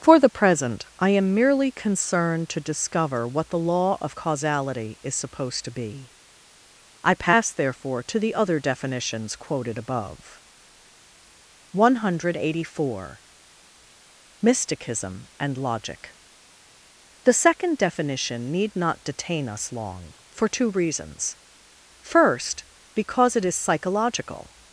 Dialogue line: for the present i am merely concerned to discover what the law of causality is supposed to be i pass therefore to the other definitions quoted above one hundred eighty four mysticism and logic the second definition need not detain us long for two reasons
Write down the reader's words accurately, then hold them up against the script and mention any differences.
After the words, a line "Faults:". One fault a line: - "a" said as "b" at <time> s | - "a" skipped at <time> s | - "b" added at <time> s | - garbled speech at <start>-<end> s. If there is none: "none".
for the present i am merely concerned to discover what the law of causality is supposed to be i pass therefore to the other definitions quoted above one hundred eighty four mysticism and logic the second definition need not detain us long for two reasons first because it is psychological
Faults:
- "first because it is psychological" added at 22.0 s